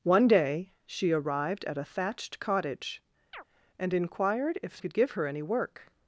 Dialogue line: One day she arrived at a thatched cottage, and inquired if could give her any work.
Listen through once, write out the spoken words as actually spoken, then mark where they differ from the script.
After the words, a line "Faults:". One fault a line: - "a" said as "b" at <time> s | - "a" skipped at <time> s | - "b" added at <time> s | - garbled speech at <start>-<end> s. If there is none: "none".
One day she arrived at a thatched cottage, and inquired if could give her any work.
Faults:
none